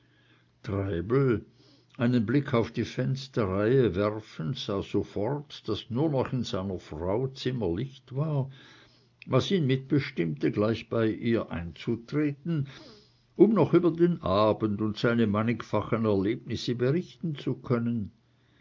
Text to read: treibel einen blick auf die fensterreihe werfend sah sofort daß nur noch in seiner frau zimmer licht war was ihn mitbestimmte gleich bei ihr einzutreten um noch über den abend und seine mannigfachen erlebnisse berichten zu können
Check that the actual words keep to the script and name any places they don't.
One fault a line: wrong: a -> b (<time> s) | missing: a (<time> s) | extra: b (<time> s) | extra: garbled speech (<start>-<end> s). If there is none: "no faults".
no faults